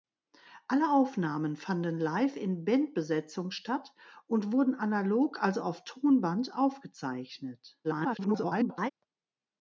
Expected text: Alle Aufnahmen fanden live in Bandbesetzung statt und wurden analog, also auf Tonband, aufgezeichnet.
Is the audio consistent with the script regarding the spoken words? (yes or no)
no